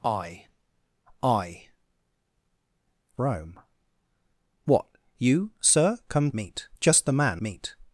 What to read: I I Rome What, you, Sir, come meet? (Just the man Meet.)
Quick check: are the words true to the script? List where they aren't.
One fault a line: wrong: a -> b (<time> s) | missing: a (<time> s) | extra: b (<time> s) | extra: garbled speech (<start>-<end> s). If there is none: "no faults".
no faults